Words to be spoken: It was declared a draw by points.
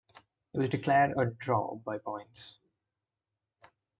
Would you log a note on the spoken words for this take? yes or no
no